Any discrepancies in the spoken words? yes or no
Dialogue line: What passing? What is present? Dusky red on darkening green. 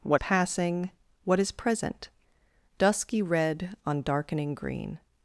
no